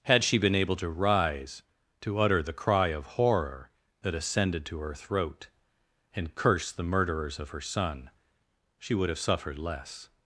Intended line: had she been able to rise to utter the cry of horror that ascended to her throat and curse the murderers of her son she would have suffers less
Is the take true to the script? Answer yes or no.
no